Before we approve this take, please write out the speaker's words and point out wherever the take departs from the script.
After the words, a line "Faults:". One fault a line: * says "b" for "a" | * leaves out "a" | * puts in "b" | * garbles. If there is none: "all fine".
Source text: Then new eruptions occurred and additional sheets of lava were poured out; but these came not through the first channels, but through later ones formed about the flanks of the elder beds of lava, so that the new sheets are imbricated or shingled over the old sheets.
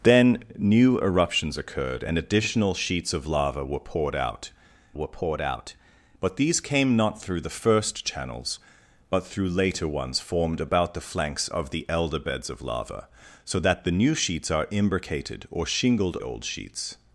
Then new eruptions occurred and additional sheets of lava were poured out were poured out; but these came not through the first channels, but through later ones formed about the flanks of the elder beds of lava, so that the new sheets are imbricated or shingled old sheets.
Faults:
* puts in "were poured out"
* leaves out "over the"